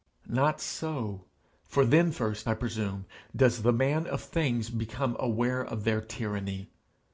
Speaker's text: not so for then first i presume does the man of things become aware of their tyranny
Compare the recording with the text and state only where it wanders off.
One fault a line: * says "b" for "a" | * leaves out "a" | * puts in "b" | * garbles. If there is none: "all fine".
all fine